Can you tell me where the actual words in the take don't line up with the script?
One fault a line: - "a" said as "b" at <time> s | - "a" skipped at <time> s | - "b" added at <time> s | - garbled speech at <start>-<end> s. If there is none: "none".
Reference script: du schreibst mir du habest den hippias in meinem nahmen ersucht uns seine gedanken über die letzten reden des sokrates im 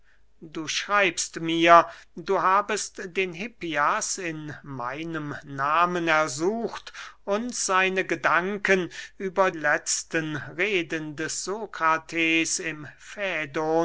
- "die" skipped at 9.5 s